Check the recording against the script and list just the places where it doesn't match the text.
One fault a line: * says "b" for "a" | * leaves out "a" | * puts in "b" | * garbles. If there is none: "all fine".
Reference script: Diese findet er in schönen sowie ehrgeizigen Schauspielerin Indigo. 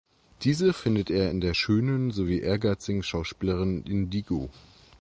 * puts in "der"